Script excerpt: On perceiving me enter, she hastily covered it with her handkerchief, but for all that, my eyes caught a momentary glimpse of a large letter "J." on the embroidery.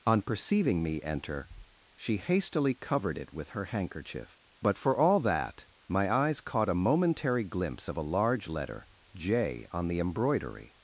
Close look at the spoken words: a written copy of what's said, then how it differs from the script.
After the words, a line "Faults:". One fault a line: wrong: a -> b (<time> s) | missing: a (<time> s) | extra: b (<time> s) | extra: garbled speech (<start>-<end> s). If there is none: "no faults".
On perceiving me enter, she hastily covered it with her handkerchief, but for all that, my eyes caught a momentary glimpse of a large letter "J." on the embroidery.
Faults:
no faults